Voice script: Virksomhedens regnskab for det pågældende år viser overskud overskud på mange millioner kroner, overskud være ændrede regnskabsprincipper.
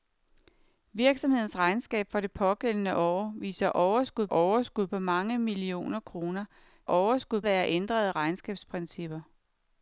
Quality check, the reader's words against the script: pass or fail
pass